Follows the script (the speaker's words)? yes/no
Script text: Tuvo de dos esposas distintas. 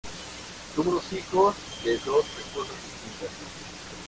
no